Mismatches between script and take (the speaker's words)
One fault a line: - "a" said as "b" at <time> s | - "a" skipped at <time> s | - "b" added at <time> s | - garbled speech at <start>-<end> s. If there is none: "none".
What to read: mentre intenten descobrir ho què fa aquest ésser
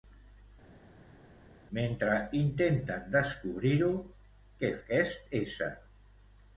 - "fa" skipped at 4.7 s